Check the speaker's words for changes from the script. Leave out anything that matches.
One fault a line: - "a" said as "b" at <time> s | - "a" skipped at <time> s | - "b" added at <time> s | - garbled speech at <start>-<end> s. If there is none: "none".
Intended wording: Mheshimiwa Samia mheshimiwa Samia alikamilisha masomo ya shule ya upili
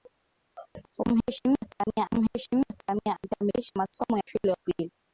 none